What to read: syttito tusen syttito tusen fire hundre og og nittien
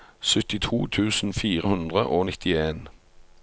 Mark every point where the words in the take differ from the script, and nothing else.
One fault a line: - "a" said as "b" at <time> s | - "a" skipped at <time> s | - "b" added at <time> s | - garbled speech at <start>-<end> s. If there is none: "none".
- "syttito tusen" skipped at 1.3 s
- "og" skipped at 2.3 s